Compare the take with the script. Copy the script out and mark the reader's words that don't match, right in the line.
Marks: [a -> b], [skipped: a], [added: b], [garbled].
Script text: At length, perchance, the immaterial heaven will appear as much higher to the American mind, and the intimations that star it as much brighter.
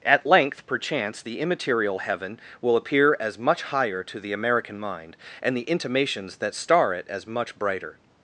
At length, perchance, the immaterial heaven will appear as much higher to the American mind, and the intimations that star it as much brighter.